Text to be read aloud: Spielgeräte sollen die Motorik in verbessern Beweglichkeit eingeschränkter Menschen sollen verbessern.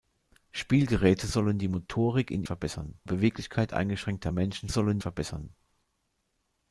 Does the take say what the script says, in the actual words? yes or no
yes